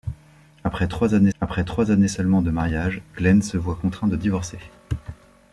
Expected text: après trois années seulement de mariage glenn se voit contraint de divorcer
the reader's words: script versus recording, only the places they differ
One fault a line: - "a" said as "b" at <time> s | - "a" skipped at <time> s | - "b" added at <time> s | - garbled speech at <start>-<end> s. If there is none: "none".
- "après trois années" added at 1.4 s